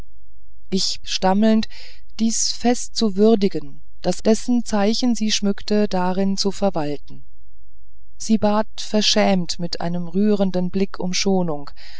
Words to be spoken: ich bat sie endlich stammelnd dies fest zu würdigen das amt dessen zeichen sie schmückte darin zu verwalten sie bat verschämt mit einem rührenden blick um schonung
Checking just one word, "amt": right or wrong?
wrong